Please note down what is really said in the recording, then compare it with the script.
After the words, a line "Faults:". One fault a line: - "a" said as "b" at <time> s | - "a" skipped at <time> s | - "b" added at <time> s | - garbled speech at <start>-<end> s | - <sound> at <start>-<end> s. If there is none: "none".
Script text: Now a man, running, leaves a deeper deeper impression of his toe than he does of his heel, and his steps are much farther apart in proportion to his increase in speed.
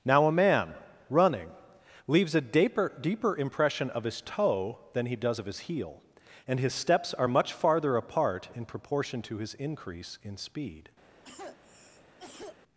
Now a man, running, leaves a deeper deeper impression of his toe than he does of his heel, and his steps are much farther apart in proportion to his increase in speed.
Faults:
- cough at 11.2-12.6 s